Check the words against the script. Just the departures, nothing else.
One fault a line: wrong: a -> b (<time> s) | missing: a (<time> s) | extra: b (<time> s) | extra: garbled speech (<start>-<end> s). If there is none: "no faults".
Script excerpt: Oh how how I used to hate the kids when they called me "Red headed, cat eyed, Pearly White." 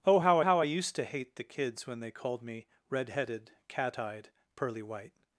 no faults